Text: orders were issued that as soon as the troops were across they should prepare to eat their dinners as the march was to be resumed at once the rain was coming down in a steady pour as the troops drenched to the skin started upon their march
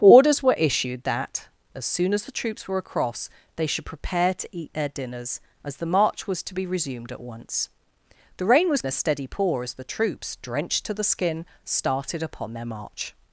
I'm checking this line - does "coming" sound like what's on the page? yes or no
no